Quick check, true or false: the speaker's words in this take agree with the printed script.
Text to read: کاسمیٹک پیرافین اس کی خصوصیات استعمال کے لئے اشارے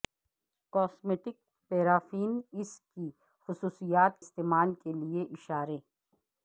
true